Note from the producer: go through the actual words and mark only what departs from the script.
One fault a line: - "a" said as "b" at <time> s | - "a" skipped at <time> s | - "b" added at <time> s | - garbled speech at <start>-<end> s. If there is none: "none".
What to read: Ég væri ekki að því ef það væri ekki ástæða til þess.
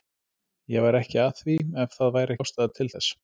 - "ekki" skipped at 2.4 s